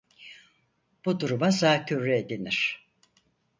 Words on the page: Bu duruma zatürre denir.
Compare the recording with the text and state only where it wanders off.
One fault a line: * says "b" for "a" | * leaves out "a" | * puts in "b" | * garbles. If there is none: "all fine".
all fine